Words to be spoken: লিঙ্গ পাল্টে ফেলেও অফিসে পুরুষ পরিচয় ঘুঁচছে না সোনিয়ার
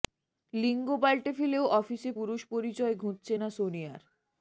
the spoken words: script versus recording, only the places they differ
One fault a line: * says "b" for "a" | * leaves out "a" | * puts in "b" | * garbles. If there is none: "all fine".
all fine